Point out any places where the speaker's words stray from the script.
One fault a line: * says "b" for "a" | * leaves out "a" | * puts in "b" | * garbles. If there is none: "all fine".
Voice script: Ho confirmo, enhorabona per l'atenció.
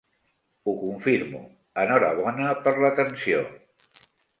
all fine